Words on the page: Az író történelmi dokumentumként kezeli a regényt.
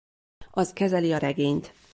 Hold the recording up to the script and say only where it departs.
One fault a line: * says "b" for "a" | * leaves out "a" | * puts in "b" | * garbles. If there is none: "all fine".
* leaves out "író történelmi dokumentumként"